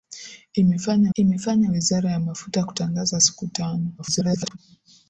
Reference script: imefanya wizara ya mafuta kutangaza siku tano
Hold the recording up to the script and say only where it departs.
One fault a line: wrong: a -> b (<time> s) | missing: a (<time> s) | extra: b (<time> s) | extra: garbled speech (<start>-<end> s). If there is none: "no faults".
extra: imefanya (1.1 s)
extra: garbled speech (4.0-4.6 s)